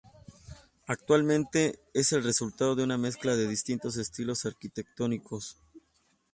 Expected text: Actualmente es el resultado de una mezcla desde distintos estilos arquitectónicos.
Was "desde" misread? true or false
true